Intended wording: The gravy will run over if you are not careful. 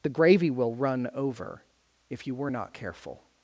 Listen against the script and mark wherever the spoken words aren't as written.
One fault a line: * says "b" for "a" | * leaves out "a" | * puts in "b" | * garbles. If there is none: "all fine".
* says "were" for "are"